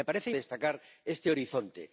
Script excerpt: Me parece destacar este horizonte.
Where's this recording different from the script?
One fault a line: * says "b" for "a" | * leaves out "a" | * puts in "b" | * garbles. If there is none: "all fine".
all fine